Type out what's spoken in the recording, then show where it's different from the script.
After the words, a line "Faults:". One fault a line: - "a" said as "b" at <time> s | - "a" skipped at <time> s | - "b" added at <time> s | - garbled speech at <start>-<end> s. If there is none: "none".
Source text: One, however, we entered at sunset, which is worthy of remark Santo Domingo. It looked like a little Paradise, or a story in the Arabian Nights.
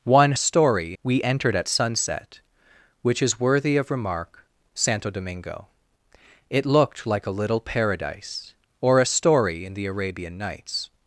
One, story, we entered at sunset, which is worthy of remark Santo Domingo. It looked like a little Paradise, or a story in the Arabian Nights.
Faults:
- "however" said as "story" at 0.3 s